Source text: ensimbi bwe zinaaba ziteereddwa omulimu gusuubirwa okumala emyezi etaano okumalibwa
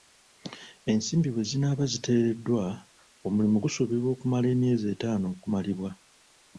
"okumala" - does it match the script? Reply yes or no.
yes